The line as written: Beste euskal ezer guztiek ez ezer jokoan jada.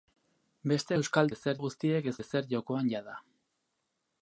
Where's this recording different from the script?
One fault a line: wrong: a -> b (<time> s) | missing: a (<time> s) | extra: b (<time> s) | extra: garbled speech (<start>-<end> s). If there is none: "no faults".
no faults